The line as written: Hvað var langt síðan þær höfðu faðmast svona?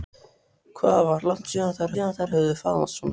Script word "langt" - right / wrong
right